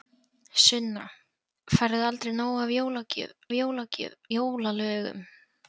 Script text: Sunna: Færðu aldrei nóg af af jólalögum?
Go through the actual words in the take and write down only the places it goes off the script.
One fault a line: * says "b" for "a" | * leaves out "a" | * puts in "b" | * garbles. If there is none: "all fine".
all fine